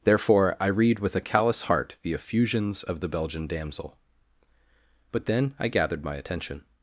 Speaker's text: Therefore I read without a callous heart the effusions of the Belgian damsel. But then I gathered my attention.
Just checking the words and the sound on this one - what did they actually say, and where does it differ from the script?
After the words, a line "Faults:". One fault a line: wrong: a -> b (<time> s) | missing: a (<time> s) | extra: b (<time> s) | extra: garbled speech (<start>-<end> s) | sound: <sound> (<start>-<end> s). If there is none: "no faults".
Therefore I read with a callous heart the effusions of the Belgian damsel. But then I gathered my attention.
Faults:
wrong: without -> with (1.0 s)